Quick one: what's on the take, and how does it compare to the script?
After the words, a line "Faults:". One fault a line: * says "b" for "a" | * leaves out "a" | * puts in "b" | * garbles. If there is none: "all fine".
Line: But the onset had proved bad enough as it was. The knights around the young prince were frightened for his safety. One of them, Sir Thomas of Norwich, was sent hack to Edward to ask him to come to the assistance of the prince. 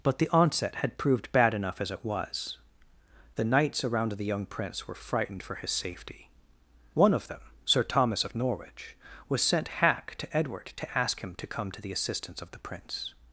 But the onset had proved bad enough as it was. The knights around the young prince were frightened for his safety. One of them, Sir Thomas of Norwich, was sent hack to Edward to ask him to come to the assistance of the prince.
Faults:
all fine